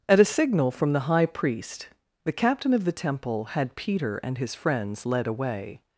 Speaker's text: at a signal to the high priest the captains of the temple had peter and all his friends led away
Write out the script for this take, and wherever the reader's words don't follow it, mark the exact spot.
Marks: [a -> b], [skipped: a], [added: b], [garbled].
at a signal [to -> from] the high priest the [captains -> captain] of the temple had peter and [skipped: all] his friends led away